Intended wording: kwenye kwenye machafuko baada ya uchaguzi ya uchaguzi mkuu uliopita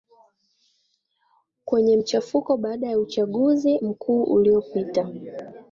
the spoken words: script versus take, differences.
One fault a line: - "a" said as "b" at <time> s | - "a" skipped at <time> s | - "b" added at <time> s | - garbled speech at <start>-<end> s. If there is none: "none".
- "kwenye" skipped at 2.0 s
- "ya uchaguzi" skipped at 3.8 s